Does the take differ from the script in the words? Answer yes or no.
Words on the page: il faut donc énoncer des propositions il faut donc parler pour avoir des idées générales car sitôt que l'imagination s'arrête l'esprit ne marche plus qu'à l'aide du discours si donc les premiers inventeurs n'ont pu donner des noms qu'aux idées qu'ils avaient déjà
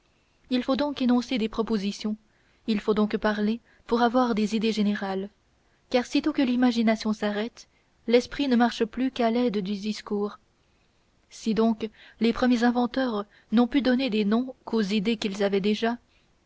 no